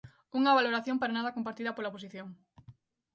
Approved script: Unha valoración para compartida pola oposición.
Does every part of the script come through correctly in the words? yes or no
no